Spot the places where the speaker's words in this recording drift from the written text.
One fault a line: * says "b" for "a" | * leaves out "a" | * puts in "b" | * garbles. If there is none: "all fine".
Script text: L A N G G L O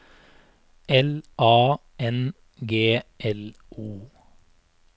* leaves out "G"